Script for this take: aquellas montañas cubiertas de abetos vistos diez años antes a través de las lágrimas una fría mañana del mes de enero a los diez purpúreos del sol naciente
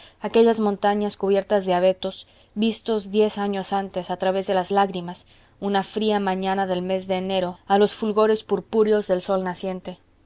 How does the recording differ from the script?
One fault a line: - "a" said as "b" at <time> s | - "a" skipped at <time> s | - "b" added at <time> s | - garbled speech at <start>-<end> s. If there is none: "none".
- "diez" said as "fulgores" at 7.9 s